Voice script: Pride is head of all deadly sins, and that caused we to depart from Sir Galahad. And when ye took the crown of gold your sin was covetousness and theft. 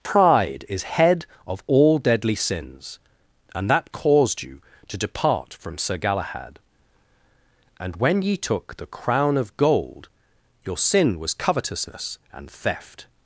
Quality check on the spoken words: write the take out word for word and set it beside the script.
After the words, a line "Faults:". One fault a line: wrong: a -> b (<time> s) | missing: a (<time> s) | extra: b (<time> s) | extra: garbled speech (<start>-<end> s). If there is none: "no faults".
Pride is head of all deadly sins, and that caused you to depart from Sir Galahad. And when ye took the crown of gold your sin was covetousness and theft.
Faults:
wrong: we -> you (4.4 s)